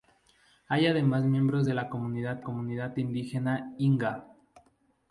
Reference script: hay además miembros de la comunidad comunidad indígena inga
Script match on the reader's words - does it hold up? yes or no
yes